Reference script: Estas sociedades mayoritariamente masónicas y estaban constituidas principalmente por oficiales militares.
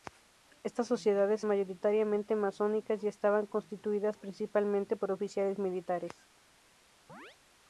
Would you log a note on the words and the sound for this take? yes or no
yes